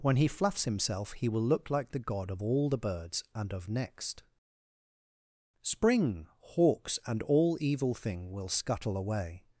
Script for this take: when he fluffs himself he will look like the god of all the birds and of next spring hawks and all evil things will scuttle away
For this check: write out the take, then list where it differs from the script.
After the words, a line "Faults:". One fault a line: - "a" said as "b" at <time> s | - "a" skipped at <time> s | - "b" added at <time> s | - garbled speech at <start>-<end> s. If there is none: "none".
when he fluffs himself he will look like the god of all the birds and of next spring hawks and all evil thing will scuttle away
Faults:
- "things" said as "thing" at 7.9 s